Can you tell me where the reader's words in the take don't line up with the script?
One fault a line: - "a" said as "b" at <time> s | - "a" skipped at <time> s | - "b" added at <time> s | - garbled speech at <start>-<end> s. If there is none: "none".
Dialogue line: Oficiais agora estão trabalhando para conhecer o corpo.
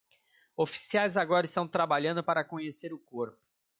none